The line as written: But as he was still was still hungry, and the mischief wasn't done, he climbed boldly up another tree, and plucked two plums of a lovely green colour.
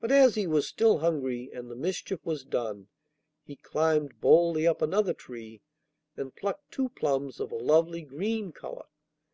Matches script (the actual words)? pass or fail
fail